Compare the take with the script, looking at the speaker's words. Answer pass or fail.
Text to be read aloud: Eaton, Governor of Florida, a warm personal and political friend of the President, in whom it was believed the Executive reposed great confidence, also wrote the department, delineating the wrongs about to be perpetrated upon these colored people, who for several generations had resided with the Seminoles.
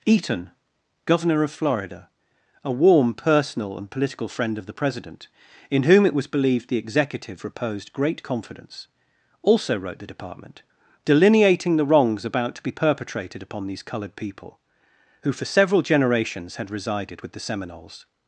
pass